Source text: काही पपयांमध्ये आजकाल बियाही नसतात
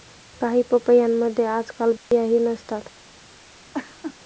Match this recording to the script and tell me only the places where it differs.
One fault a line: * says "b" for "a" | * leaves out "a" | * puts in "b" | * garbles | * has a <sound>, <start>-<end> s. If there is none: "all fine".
* has a dropout, 2.0-2.1 s
* has a laugh, 3.7-4.2 s